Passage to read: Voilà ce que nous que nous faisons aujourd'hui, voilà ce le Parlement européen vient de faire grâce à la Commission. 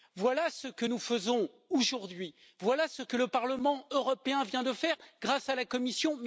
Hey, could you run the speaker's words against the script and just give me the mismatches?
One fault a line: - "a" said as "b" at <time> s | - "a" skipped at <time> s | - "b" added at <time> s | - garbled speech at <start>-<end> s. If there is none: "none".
- "que nous" skipped at 1.0 s
- "que" added at 3.0 s